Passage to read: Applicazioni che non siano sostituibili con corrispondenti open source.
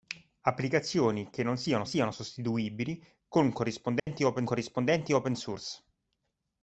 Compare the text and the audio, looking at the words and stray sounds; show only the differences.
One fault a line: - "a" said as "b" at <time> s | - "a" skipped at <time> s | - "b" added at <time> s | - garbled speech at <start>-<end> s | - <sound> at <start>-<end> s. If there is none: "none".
- "siano" added at 1.8 s
- dropout at 4.0-4.1 s
- "corrispondenti open" added at 4.4 s